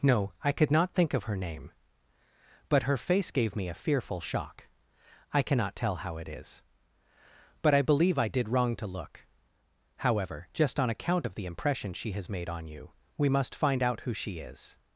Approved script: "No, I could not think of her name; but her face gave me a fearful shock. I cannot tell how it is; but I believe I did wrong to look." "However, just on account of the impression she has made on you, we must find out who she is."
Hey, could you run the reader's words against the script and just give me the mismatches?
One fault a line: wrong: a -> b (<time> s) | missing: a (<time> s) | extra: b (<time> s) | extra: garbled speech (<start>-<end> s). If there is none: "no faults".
no faults